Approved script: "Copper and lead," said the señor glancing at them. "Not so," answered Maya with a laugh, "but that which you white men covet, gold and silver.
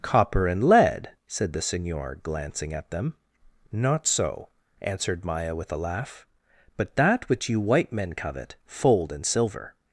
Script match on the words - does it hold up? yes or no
no